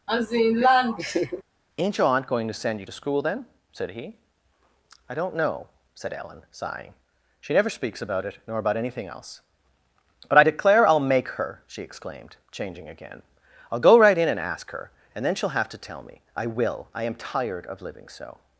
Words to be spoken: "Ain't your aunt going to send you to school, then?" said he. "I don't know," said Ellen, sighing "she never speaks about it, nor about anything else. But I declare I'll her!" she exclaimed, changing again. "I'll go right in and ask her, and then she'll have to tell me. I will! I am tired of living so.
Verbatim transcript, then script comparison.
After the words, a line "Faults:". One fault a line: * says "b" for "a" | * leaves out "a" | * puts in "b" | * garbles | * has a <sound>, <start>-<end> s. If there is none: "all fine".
"Ain't your aunt going to send you to school, then?" said he. "I don't know," said Ellen, sighing "she never speaks about it, nor about anything else. But I declare I'll make her!" she exclaimed, changing again. "I'll go right in and ask her, and then she'll have to tell me. I will! I am tired of living so.
Faults:
* has a laugh, 0.1-1.4 s
* puts in "make"